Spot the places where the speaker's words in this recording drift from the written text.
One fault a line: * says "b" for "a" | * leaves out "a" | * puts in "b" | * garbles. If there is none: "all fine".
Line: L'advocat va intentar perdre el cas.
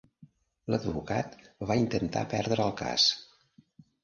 all fine